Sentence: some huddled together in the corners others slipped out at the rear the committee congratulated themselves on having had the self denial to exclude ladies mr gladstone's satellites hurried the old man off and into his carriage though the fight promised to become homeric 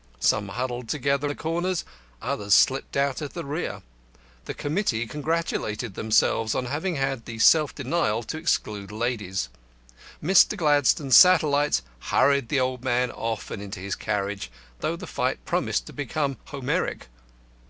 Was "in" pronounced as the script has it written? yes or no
no